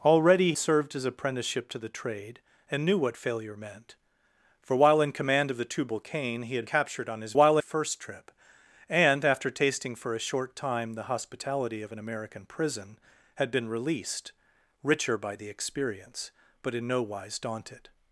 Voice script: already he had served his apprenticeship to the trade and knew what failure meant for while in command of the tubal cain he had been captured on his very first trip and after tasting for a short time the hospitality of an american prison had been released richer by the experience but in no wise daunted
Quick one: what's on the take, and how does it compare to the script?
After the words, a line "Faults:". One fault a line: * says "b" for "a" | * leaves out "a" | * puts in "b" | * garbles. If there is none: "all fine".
already served his apprenticeship to the trade and knew what failure meant for while in command of the tubal cain he had captured on his while first trip and after tasting for a short time the hospitality of an american prison had been released richer by the experience but in no wise daunted
Faults:
* leaves out "he had"
* leaves out "been"
* says "while" for "very"